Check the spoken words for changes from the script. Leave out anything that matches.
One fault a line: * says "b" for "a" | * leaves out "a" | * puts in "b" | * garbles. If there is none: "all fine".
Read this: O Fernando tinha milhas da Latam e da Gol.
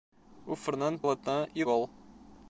* leaves out "tinha milhas da"
* leaves out "da"